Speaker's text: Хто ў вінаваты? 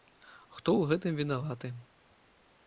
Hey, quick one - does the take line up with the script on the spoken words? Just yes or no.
no